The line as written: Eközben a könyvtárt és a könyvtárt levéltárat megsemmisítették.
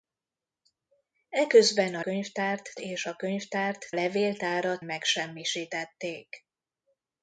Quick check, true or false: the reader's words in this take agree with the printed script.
true